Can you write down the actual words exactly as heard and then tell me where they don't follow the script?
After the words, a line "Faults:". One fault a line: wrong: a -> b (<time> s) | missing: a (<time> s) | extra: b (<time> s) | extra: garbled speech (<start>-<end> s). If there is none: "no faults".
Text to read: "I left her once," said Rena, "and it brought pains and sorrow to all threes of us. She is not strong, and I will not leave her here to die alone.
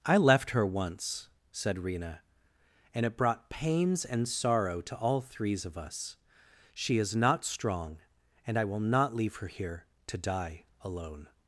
"I left her once," said Rena, "and it brought pains and sorrow to all threes of us. She is not strong, and I will not leave her here to die alone.
Faults:
no faults